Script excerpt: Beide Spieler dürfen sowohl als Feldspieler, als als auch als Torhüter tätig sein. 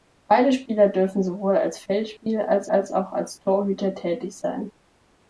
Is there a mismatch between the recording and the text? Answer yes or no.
no